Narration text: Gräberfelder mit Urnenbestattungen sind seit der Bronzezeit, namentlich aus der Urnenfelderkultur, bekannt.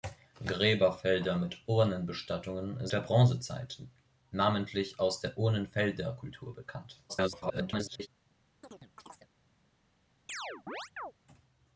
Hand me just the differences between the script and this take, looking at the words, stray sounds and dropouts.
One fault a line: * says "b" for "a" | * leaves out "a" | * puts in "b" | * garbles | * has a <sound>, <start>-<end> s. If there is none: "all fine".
* leaves out "sind seit"
* garbles
* has a chirp, 8.6-9.3 s
* has a chirp, 10.3-11.1 s